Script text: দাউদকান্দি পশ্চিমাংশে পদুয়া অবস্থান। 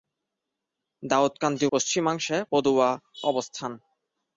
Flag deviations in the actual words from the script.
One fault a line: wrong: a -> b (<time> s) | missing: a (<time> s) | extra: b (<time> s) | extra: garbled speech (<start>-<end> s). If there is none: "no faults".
no faults